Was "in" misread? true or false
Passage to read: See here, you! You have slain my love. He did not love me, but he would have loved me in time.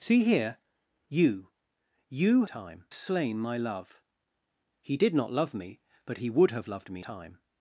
true